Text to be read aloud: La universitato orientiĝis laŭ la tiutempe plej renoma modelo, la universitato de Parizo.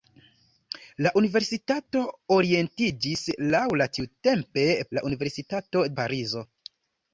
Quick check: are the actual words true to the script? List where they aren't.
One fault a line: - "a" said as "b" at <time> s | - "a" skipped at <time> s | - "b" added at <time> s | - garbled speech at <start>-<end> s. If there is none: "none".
- "plej renoma modelo" skipped at 4.7 s
- "de" skipped at 5.9 s